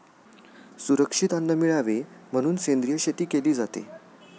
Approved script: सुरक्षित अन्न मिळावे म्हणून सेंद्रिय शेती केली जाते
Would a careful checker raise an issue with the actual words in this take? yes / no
no